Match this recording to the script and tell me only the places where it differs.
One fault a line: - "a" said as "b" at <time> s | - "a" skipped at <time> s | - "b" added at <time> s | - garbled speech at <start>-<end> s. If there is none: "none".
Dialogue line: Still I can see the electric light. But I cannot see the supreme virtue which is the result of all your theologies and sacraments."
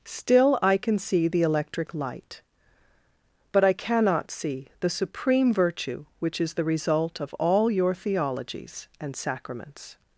none